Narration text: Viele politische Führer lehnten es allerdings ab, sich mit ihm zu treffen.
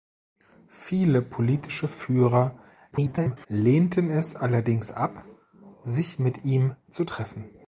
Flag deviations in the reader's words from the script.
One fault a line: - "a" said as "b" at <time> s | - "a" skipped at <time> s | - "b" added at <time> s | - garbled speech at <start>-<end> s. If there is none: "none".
- garbled speech at 2.9-3.5 s